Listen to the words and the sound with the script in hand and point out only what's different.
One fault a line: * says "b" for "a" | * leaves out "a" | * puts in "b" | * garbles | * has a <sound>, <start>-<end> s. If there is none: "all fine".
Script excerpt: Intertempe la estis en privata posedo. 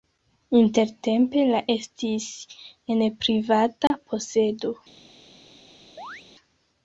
* has a dropout, 3.9-3.9 s
* has a chirp, 6.0-6.2 s